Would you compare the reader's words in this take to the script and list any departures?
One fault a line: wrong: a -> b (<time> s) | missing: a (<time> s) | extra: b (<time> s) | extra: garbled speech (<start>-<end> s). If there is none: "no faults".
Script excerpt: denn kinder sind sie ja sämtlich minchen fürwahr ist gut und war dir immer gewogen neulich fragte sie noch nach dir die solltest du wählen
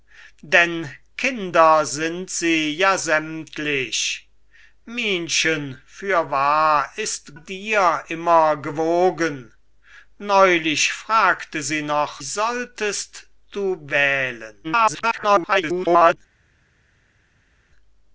missing: gut und war (7.3 s)
missing: nach dir die (12.2 s)
extra: garbled speech (14.6-16.2 s)